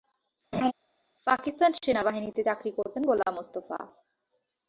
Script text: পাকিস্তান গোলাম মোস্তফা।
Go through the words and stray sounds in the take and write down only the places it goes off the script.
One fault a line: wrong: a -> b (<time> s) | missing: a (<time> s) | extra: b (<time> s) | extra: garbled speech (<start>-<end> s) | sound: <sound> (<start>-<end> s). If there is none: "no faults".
sound: laugh (0.5-0.7 s)
extra: সেনাবাহিনীতে চাকরি করতেন (1.8 s)